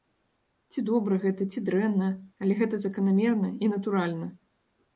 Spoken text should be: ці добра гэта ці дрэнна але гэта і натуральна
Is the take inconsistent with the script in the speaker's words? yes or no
yes